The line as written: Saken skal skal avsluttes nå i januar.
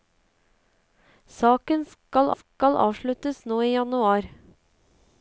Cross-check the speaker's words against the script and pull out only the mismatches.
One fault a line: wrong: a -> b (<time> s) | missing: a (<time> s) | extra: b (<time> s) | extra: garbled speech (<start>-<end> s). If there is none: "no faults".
no faults